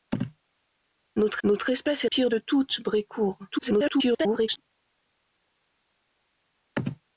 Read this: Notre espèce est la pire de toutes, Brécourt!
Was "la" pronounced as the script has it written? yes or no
no